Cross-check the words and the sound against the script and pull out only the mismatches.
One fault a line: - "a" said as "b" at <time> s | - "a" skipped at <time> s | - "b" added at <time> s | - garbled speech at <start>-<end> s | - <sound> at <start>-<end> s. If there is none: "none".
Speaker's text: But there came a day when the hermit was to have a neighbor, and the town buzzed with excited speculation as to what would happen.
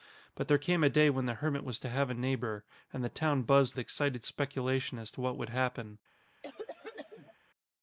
- "with" skipped at 3.8 s
- cough at 6.4-7.3 s